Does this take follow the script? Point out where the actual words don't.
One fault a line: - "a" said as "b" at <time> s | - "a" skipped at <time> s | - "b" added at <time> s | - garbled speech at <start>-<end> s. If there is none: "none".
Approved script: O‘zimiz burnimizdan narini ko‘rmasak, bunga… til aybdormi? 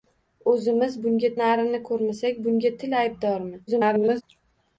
- "burnimizdan" said as "bunga" at 1.0 s
- garbled speech at 3.7-4.2 s